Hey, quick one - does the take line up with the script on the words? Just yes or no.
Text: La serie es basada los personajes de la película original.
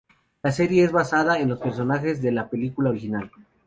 no